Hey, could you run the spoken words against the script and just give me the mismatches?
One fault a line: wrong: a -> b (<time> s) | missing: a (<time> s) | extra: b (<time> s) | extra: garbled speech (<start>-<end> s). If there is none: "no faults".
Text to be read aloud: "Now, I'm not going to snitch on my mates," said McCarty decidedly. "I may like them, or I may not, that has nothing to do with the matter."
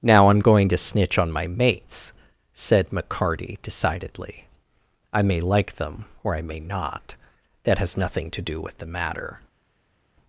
missing: not (0.4 s)